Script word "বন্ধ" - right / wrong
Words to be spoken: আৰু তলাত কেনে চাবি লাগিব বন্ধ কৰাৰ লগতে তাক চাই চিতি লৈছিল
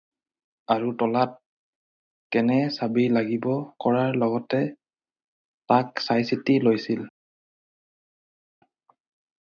wrong